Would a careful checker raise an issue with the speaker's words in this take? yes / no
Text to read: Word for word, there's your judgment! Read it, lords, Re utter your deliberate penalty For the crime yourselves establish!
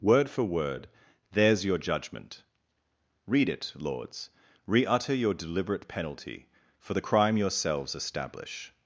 no